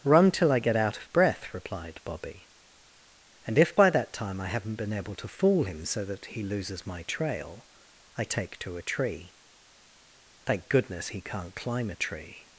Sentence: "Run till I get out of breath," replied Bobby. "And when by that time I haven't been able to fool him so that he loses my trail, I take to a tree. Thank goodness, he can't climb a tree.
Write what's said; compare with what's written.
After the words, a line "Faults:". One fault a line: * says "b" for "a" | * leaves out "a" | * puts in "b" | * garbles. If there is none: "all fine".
"Run till I get out of breath," replied Bobby. "And if by that time I haven't been able to fool him so that he loses my trail, I take to a tree. Thank goodness, he can't climb a tree.
Faults:
* says "if" for "when"